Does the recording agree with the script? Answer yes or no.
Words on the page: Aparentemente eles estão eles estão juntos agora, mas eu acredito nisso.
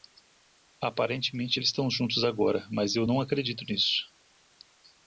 no